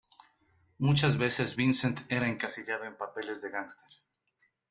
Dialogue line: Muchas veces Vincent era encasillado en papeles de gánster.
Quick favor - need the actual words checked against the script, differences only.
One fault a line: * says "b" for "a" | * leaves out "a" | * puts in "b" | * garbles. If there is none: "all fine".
all fine